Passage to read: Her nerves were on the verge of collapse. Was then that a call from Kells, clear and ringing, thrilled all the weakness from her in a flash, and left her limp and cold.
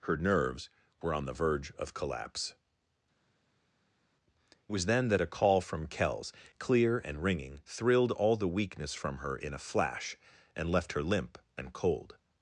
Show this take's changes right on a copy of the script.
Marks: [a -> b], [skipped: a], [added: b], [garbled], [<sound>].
Her nerves were on the verge of collapse. Was then that a call from Kells, clear and ringing, thrilled all the weakness from her in a flash, and left her limp and cold.